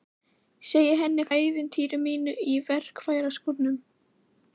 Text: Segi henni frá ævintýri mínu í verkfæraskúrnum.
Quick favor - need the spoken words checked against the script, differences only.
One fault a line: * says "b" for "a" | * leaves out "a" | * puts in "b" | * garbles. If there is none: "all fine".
* leaves out "frá"